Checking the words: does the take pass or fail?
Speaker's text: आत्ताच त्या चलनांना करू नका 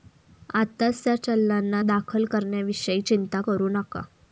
fail